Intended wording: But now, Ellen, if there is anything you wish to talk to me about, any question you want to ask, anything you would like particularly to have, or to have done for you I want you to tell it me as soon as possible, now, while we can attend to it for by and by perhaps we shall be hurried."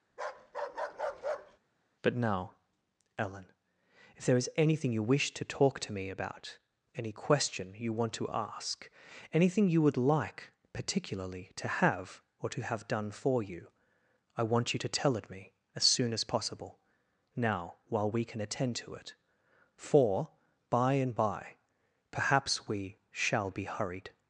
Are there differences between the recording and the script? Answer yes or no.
no